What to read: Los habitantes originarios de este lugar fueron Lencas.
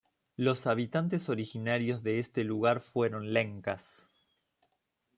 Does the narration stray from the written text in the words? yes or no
no